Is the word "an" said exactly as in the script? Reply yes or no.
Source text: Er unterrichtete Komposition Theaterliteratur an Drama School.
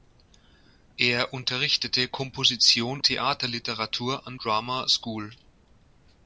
yes